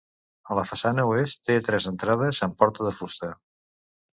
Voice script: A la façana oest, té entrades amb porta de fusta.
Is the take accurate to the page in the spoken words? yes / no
no